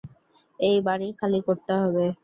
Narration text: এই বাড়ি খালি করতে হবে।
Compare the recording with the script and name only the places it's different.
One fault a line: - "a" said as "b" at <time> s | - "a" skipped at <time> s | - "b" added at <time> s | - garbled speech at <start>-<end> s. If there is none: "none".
none